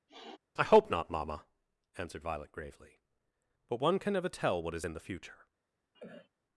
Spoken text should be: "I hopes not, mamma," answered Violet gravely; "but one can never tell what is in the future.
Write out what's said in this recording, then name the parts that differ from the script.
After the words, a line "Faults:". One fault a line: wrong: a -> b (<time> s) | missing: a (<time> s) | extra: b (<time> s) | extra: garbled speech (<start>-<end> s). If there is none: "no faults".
"I hope not, mamma," answered Violet gravely; "but one can never tell what is in the future.
Faults:
wrong: hopes -> hope (0.6 s)